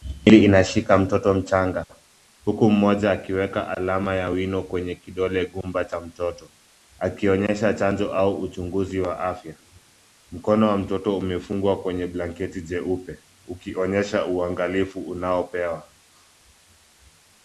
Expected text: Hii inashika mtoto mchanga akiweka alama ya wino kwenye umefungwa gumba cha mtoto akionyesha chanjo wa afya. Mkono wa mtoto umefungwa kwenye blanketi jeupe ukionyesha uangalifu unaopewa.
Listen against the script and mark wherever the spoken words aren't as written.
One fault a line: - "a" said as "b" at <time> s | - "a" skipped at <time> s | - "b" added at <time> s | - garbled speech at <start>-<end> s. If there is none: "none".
- "huku mmoja" added at 2.5 s
- "umefungwa" said as "kidole" at 5.0 s
- "au uchunguzi" added at 8.1 s